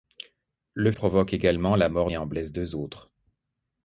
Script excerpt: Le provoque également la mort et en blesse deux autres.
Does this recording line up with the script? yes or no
yes